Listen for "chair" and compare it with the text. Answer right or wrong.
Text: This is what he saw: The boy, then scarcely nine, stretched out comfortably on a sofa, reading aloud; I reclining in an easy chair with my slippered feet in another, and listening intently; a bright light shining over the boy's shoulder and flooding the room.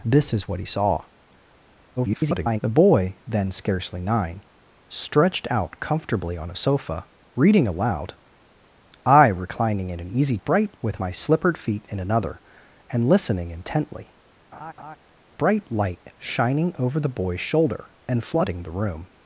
wrong